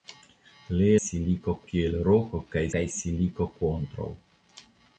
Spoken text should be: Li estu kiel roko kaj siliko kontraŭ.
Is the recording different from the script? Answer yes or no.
yes